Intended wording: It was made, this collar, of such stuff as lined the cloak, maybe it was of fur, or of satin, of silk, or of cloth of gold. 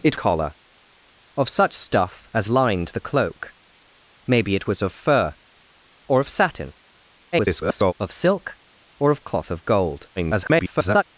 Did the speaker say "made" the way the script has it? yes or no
no